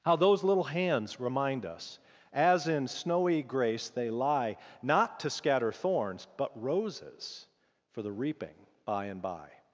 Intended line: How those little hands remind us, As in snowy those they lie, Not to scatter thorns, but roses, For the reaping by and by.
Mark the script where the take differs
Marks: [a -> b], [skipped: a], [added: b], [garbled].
How those little hands remind us, As in snowy [those -> grace] they lie, Not to scatter thorns, but roses, For the reaping by and by.